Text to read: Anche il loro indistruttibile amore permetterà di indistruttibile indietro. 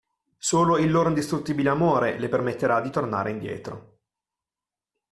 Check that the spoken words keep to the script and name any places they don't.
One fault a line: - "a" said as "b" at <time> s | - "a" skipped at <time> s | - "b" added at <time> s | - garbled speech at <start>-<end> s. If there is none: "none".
- "Anche" said as "Solo" at 0.4 s
- "le" added at 2.2 s
- "indistruttibile" said as "tornare" at 2.9 s